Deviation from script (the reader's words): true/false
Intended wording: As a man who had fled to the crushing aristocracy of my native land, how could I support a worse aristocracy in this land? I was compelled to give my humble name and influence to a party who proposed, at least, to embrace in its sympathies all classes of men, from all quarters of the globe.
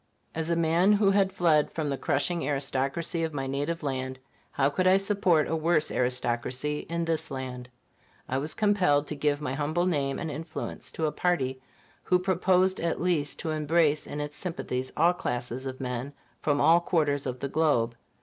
true